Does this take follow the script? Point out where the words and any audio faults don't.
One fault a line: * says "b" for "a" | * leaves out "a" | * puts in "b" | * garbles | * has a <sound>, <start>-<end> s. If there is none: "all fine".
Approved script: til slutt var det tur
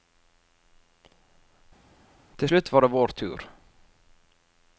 * puts in "vår"